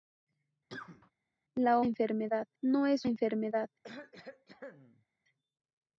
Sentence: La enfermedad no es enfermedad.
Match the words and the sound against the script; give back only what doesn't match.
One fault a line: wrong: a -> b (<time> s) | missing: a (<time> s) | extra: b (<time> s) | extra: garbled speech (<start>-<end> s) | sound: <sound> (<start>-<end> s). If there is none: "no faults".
sound: cough (0.7-1.1 s)
sound: cough (3.8-5.1 s)